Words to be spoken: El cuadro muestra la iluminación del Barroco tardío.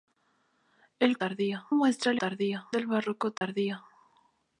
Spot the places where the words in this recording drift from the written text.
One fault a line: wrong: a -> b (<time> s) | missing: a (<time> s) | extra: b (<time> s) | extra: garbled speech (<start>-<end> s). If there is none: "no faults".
wrong: cuadro -> tardío (1.1 s)
wrong: iluminación -> tardío (2.2 s)